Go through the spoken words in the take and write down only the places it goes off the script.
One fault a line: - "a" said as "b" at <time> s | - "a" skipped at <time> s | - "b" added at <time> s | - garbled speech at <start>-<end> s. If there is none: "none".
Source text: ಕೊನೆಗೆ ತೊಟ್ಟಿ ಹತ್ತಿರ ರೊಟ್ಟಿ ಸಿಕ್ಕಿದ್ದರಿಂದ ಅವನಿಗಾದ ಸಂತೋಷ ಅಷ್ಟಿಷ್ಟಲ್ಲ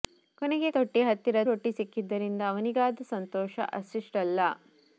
none